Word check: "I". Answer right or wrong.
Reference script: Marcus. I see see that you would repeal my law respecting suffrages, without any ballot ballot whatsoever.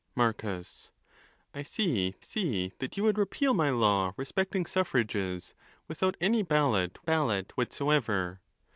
right